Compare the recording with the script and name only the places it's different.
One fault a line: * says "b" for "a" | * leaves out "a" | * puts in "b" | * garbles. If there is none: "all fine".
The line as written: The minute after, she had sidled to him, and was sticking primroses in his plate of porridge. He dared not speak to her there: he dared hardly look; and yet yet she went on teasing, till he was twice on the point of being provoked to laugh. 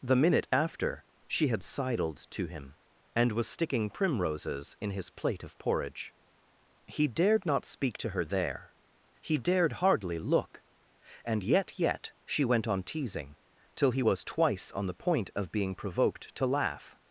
all fine